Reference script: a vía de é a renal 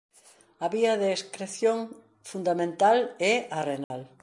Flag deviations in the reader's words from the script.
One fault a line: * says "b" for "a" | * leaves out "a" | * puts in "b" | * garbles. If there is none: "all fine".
* puts in "excreción fundamental"